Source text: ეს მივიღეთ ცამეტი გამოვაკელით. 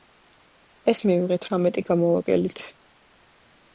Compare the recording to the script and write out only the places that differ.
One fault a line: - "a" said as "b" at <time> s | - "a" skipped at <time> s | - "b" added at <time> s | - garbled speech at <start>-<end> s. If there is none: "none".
none